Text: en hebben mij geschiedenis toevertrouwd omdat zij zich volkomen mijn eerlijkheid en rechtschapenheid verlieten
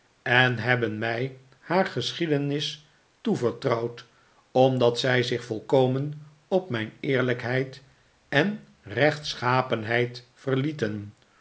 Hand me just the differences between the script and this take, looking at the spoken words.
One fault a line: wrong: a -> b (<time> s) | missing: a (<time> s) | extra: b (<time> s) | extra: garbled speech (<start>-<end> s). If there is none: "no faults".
extra: haar (1.6 s)
extra: op (6.5 s)